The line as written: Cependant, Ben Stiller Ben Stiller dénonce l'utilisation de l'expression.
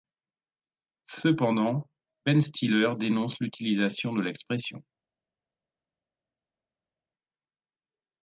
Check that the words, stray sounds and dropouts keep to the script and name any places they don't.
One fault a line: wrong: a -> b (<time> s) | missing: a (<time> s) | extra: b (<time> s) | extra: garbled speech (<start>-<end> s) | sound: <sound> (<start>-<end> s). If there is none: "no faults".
missing: Ben Stiller (2.9 s)